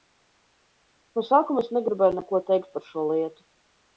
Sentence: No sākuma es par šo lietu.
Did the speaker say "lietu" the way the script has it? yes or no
yes